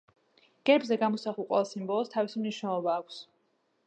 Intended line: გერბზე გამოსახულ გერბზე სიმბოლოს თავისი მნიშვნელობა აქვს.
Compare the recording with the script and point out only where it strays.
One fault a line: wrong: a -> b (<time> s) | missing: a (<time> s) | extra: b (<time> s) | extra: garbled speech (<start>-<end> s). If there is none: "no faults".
wrong: გერბზე -> ყველა (1.5 s)